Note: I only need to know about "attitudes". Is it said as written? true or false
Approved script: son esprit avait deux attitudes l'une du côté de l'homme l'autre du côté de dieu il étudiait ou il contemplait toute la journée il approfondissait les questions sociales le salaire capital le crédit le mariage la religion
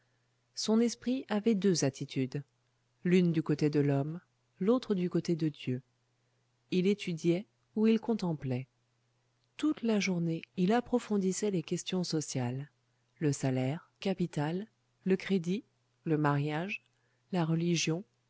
true